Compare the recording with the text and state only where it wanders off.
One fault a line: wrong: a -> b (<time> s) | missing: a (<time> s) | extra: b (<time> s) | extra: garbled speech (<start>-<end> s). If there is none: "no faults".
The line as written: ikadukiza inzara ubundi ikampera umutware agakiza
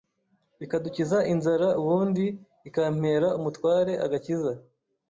no faults